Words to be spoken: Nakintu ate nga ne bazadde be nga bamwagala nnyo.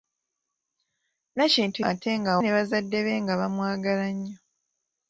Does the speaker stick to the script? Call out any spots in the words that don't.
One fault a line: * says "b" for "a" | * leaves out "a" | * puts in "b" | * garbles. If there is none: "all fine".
all fine